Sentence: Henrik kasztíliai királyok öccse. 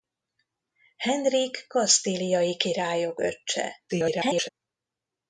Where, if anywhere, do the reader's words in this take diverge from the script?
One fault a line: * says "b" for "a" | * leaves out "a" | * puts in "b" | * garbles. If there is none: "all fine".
* garbles